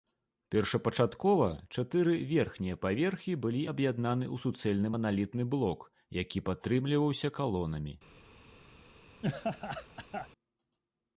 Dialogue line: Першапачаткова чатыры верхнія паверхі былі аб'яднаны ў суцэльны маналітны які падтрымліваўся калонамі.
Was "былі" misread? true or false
false